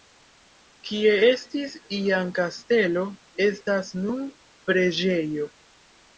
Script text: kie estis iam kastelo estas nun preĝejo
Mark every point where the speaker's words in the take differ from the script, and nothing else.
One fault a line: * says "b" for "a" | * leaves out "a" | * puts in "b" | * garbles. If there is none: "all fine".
all fine